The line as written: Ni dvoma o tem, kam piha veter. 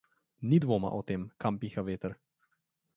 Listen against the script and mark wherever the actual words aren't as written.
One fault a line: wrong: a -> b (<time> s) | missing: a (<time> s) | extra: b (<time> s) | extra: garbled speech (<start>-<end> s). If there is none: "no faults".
no faults